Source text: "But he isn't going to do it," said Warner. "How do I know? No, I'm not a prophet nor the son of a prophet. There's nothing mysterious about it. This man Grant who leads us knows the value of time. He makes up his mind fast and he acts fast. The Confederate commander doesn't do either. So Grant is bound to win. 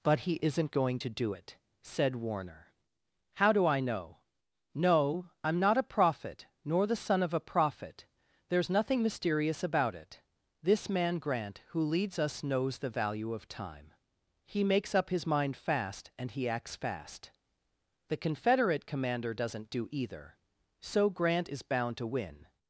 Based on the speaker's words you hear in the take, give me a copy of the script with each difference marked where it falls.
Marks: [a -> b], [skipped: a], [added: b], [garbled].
"But he isn't going to do it," said Warner. "How do I know? No, I'm not a prophet nor the son of a prophet. There's nothing mysterious about it. This man Grant who leads us knows the value of time. He makes up his mind fast and he acts fast. The Confederate commander doesn't do either. So Grant is bound to win.